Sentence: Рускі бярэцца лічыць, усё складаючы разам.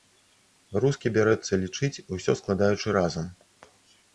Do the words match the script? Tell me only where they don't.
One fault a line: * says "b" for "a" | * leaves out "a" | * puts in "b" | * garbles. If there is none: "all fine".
all fine